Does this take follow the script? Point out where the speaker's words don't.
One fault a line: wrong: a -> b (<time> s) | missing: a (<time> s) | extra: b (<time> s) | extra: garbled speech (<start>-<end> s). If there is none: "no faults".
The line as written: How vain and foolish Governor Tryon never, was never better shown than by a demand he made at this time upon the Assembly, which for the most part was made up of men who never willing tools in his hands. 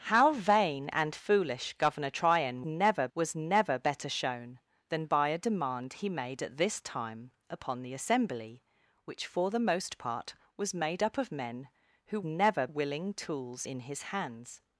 no faults